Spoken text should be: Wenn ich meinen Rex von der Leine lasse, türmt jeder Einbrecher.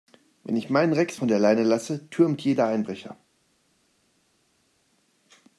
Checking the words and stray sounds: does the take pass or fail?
pass